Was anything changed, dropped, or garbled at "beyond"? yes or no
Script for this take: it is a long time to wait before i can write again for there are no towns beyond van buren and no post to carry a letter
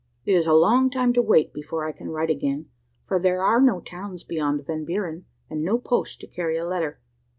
no